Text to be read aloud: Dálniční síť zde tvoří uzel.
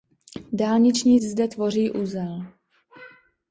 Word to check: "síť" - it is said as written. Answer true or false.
false